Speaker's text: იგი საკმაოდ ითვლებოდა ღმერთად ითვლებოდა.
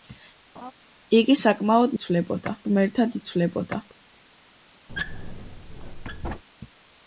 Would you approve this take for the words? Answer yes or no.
yes